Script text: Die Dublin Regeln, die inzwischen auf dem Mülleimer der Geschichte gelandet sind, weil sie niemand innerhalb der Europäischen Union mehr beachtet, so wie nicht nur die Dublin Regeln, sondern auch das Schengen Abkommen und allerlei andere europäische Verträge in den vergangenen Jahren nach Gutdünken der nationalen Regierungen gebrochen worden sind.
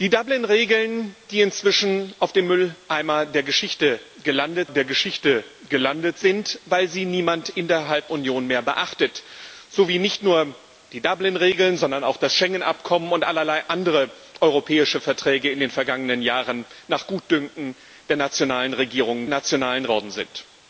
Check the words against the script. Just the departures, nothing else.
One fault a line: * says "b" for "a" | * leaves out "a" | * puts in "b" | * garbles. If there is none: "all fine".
* puts in "der Geschichte gelandet"
* leaves out "der Europäischen"
* says "nationalen" for "gebrochen"